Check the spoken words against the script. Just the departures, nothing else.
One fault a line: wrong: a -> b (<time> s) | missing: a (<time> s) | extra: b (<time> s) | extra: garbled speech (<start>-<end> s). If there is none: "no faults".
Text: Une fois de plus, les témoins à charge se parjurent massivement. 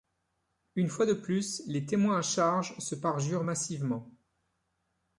no faults